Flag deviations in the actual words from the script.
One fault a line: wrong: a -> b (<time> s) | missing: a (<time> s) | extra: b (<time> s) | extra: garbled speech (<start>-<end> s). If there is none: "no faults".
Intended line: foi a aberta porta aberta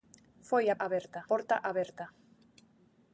no faults